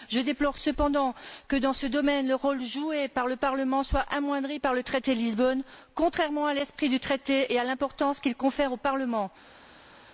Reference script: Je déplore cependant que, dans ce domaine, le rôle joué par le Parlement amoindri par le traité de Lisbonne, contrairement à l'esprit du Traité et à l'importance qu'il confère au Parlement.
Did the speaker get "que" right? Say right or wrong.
right